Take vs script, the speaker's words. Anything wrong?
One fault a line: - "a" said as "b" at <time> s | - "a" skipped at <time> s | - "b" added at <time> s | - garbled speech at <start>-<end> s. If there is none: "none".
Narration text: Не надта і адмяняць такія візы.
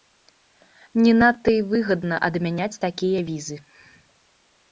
- "выгадна" added at 1.7 s